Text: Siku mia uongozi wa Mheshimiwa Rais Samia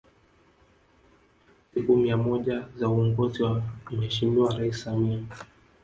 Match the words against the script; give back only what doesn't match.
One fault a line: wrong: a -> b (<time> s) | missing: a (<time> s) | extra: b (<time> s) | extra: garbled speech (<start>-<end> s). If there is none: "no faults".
extra: moja za (2.2 s)